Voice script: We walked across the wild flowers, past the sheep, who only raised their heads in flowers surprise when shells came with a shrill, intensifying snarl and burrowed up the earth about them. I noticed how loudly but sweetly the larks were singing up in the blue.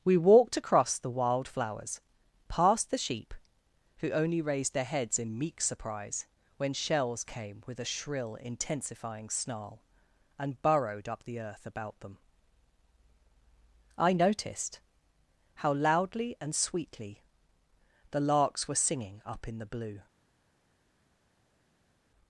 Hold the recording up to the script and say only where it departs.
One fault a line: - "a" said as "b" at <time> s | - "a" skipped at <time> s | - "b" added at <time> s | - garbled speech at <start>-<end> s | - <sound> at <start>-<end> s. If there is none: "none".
- "flowers" said as "meek" at 5.4 s
- "but" said as "and" at 16.4 s